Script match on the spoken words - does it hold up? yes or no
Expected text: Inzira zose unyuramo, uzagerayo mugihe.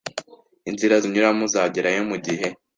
no